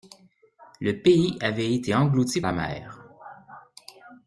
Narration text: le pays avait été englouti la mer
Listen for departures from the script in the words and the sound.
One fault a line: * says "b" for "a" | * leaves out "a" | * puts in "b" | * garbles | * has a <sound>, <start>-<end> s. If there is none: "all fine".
all fine